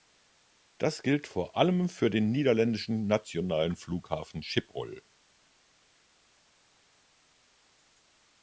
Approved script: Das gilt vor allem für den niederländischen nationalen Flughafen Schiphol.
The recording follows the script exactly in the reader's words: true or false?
true